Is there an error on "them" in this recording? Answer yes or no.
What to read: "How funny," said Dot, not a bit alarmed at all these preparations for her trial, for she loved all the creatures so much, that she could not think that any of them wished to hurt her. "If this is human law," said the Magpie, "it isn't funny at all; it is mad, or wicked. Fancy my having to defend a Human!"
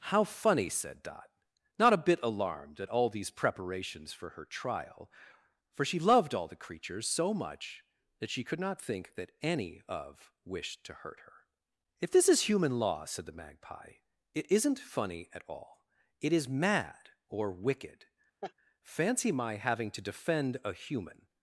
yes